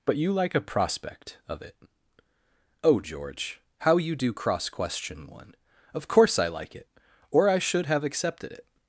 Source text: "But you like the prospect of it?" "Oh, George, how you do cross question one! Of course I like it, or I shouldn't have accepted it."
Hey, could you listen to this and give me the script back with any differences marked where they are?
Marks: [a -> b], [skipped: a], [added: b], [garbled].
"But you like [the -> a] prospect of it?" "Oh, George, how you do cross question one! Of course I like it, or I [shouldn't -> should] have accepted it."